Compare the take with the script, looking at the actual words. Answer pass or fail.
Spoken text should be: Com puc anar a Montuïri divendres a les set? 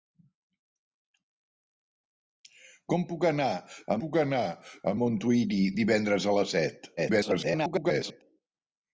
fail